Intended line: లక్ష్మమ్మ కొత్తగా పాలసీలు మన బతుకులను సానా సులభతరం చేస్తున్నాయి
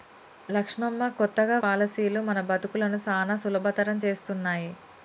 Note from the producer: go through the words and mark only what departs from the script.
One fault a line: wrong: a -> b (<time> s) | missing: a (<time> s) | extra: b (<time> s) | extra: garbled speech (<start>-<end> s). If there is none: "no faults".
no faults